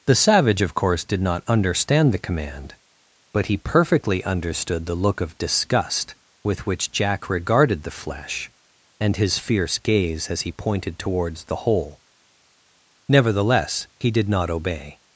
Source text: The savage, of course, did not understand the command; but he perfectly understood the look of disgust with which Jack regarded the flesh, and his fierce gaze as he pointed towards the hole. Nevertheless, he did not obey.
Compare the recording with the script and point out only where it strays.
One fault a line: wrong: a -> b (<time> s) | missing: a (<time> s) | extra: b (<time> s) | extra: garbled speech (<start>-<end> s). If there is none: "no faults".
no faults